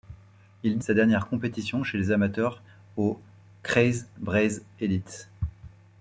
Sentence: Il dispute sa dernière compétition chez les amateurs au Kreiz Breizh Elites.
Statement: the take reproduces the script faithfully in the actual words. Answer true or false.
false